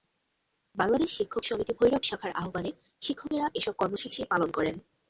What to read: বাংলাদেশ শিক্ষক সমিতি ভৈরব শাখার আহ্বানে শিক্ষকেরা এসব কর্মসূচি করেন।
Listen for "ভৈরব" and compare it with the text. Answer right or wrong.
right